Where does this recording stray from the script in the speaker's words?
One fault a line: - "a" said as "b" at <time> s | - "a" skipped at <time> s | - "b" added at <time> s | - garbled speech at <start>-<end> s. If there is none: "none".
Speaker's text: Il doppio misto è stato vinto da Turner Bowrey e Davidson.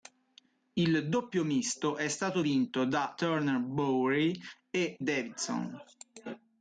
none